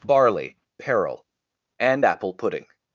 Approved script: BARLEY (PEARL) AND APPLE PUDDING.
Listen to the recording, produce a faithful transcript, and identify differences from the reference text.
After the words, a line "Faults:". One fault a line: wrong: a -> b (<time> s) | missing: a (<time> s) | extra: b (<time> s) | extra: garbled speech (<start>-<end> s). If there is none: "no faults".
BARLEY (Peril) AND APPLE PUDDING.
Faults:
wrong: PEARL -> Peril (0.8 s)